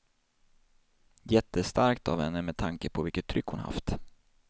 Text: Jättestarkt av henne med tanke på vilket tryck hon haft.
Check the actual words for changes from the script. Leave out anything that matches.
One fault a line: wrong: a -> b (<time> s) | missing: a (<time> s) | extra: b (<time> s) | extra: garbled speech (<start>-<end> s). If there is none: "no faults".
no faults